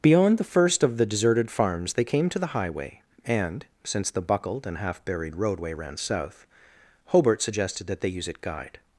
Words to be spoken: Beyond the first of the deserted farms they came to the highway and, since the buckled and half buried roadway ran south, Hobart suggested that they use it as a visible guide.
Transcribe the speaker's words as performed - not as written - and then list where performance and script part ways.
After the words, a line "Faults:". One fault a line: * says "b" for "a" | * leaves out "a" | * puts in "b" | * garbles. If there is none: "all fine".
Beyond the first of the deserted farms they came to the highway and, since the buckled and half buried roadway ran south, Hobart suggested that they use it guide.
Faults:
* leaves out "as a visible"